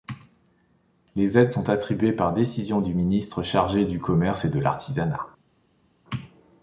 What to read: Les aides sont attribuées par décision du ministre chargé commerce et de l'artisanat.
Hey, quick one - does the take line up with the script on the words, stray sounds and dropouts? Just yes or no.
no